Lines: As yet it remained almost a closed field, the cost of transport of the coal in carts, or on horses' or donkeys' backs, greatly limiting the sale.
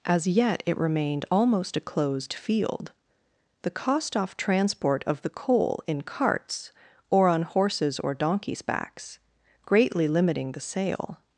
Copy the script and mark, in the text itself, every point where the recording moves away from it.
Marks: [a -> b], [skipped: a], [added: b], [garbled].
As yet it remained almost a closed field, the cost [of -> off] transport of the coal in carts, or on horses' or donkeys' backs, greatly limiting the sale.